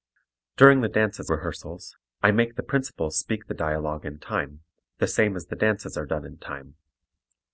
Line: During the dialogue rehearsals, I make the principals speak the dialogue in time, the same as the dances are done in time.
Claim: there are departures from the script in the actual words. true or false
true